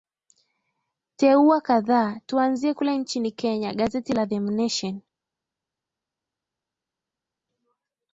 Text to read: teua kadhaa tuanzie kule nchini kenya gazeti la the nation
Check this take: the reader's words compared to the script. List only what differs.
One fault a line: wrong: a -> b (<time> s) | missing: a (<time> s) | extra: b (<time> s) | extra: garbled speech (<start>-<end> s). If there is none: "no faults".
no faults